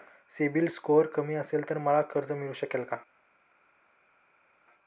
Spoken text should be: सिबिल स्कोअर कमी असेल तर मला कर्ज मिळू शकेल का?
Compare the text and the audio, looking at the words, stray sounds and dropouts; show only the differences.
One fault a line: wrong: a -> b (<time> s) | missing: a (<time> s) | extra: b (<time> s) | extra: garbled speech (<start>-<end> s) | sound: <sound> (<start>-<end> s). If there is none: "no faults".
no faults